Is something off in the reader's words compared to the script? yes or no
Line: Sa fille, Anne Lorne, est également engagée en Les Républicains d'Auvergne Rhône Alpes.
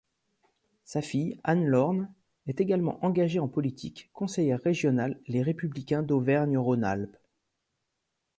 yes